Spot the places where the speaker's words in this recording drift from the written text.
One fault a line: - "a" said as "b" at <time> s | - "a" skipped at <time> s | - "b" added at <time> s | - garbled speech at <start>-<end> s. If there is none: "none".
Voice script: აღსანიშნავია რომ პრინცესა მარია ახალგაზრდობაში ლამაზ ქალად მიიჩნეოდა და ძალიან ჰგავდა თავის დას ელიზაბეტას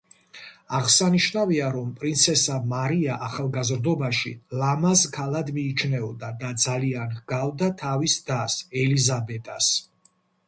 none